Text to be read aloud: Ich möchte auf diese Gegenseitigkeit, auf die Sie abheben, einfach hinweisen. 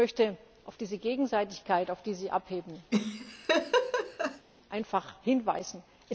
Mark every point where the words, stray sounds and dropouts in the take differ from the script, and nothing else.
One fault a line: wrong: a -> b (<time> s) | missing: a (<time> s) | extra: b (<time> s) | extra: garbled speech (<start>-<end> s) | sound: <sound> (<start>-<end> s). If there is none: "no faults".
sound: laugh (2.9-4.5 s)